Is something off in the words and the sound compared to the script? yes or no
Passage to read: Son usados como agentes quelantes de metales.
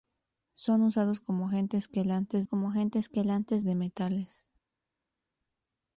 yes